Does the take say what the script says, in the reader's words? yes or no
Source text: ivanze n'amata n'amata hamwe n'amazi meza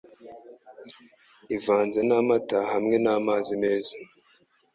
no